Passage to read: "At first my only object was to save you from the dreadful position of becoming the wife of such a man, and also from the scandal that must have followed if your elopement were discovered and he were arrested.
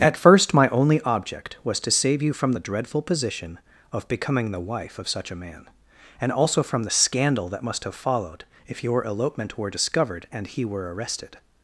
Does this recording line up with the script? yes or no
yes